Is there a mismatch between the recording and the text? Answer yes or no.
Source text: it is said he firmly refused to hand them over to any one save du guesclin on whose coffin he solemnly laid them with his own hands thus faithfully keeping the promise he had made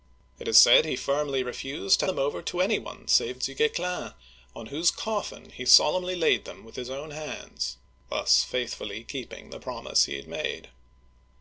yes